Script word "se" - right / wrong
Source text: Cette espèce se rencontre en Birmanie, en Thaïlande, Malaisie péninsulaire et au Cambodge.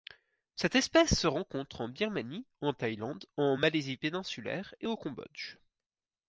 right